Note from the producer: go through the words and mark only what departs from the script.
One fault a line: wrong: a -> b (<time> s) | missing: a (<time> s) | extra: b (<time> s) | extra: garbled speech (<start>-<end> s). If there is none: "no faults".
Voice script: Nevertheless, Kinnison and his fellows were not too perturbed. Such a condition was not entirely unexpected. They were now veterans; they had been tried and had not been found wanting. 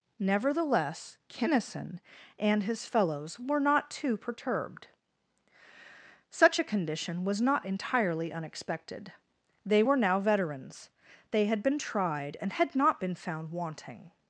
no faults